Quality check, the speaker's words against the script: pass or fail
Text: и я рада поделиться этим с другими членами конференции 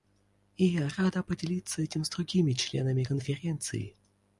pass